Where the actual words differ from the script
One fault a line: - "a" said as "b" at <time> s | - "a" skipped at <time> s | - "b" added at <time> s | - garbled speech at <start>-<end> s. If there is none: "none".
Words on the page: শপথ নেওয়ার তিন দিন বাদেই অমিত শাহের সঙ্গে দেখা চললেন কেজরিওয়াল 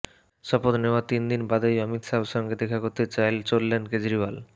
- "করতে" added at 2.8 s